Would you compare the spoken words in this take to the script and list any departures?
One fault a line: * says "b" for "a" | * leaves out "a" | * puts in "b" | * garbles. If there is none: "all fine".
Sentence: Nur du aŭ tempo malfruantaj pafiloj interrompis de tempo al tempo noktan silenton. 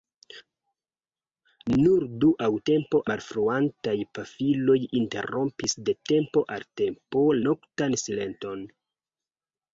all fine